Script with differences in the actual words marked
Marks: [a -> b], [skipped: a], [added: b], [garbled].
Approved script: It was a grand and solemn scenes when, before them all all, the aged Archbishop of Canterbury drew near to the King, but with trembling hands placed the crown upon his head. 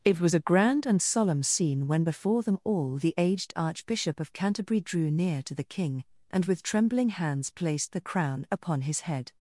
It was a grand and solemn [scenes -> scene] when, before them all [skipped: all,] the aged Archbishop of Canterbury drew near to the King, [but -> and] with trembling hands placed the crown upon his head.